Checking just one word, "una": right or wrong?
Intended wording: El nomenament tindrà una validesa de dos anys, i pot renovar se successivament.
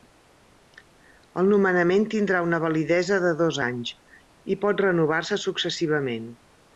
right